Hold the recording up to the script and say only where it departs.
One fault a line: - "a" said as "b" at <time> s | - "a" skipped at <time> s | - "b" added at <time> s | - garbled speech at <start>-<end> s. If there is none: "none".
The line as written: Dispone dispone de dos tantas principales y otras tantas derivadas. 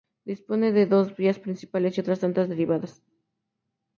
- "dispone" skipped at 0.7 s
- "tantas" said as "vías" at 1.1 s